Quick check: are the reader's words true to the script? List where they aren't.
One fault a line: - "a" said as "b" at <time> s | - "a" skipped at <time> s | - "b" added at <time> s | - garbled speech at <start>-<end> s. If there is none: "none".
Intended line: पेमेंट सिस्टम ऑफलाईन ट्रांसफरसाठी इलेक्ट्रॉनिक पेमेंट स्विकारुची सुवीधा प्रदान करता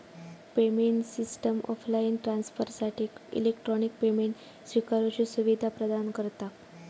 none